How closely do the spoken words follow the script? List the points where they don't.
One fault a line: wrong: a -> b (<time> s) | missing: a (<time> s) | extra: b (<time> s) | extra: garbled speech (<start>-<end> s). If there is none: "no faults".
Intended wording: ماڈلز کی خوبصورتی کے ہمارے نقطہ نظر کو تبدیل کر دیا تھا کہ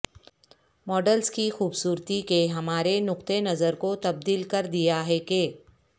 wrong: تھا -> ہے (5.1 s)